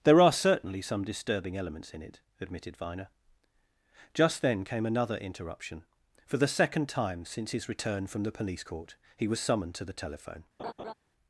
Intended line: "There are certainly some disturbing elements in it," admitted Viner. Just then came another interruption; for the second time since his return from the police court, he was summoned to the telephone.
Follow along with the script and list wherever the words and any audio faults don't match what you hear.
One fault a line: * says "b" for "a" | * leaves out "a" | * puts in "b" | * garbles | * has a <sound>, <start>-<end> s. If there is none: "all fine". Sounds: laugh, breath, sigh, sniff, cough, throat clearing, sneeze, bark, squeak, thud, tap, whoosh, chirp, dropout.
* has a laugh, 10.6-10.9 s